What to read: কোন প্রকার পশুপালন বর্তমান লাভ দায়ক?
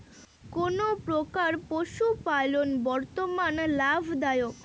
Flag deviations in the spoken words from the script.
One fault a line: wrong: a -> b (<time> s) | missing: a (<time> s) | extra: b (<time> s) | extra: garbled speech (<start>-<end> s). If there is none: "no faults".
no faults